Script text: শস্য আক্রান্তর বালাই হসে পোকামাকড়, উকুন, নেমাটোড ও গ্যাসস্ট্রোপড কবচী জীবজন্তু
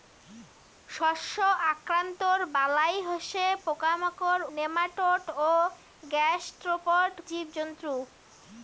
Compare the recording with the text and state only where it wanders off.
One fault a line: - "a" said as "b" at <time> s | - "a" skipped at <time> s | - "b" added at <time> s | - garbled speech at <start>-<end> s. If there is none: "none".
- "উকুন" skipped at 4.4 s
- "কবচী" skipped at 7.1 s